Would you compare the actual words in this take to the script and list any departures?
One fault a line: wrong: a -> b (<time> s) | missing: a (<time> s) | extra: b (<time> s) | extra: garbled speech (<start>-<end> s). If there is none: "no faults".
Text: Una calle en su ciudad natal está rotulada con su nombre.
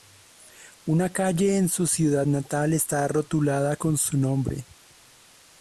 no faults